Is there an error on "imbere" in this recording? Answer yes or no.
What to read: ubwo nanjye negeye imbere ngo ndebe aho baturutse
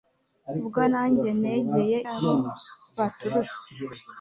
yes